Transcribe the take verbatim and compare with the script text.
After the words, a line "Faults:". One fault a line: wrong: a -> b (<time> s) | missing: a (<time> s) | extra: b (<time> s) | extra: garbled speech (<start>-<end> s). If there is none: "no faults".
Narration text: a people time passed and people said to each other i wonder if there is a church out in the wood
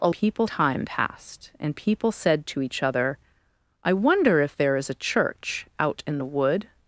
a people time passed and people said to each other i wonder if there is a church out in the wood
Faults:
no faults